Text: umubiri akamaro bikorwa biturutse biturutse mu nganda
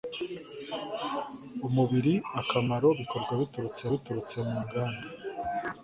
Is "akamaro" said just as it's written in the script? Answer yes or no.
yes